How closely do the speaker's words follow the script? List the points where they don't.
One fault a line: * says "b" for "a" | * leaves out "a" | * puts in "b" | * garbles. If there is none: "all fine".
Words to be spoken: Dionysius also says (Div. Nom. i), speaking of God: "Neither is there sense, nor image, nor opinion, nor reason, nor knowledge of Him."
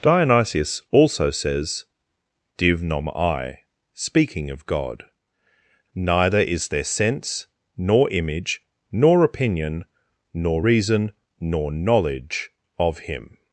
all fine